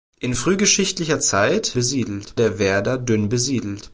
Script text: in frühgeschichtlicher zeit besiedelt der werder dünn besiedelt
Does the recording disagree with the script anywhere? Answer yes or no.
no